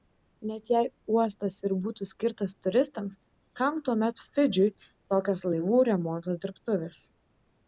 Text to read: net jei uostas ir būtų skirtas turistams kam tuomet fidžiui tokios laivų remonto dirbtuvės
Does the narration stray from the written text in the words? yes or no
no